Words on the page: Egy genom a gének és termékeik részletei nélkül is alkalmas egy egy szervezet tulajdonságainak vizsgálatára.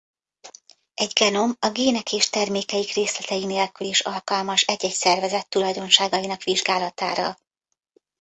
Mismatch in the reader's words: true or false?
false